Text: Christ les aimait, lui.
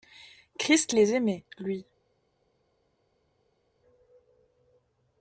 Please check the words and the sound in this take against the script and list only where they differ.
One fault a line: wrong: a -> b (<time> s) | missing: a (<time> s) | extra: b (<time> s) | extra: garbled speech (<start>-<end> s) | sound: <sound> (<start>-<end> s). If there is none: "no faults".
no faults